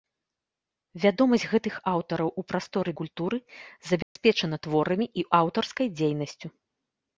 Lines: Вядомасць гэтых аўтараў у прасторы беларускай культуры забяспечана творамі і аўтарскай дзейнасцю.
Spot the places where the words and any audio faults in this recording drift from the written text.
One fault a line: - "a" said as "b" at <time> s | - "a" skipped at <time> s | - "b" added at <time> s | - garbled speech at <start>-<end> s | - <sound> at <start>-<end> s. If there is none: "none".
- "беларускай" skipped at 2.9 s
- dropout at 4.0-4.2 s